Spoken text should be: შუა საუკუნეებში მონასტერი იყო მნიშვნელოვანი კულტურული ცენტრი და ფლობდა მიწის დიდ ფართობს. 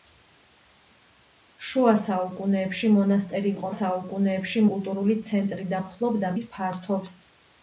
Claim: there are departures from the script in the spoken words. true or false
true